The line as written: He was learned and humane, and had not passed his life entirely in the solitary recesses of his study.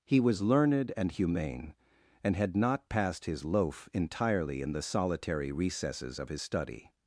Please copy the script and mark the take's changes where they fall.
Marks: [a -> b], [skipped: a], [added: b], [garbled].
He was learned and humane, and had not passed his [life -> loaf] entirely in the solitary recesses of his study.